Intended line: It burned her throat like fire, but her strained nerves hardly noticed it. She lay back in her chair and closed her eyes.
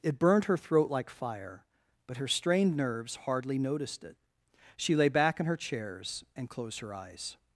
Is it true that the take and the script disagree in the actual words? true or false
true